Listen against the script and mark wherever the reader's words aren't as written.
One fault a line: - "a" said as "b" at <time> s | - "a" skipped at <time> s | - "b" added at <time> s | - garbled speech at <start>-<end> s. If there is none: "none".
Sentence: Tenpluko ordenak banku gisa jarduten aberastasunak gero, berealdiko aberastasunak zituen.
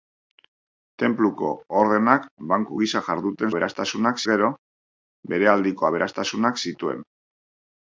none